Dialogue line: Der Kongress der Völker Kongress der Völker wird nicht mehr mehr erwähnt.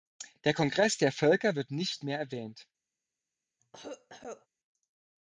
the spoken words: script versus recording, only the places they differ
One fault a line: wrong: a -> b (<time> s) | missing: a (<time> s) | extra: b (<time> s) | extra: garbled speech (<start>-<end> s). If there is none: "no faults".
missing: Kongress der Völker (1.6 s)
missing: mehr (2.2 s)